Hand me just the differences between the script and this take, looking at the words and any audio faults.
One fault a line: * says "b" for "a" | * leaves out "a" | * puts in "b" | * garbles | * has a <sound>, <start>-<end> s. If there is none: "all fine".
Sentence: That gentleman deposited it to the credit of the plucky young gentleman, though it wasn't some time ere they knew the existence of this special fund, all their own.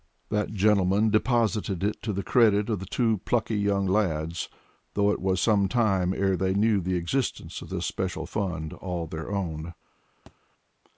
* puts in "two"
* says "lads" for "gentleman"
* says "was" for "wasn't"
* has a thud, 10.3-10.4 s